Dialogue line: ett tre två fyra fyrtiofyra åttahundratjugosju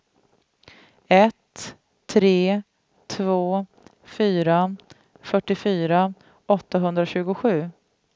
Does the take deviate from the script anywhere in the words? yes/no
no